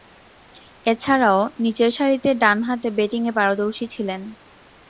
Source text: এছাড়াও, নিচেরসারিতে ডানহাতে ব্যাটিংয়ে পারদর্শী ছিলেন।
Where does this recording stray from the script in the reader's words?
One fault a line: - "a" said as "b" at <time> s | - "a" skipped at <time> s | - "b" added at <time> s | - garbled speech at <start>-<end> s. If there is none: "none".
none